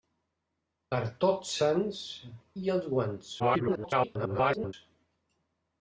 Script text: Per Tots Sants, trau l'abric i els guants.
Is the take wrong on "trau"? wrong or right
wrong